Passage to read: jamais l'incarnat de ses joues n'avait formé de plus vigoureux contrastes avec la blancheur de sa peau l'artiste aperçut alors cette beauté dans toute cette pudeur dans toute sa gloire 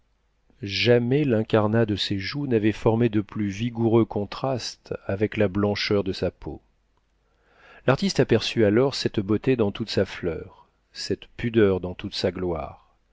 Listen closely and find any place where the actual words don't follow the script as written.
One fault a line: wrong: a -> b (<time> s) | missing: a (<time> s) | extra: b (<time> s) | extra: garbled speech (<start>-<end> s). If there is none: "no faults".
extra: sa fleur (9.9 s)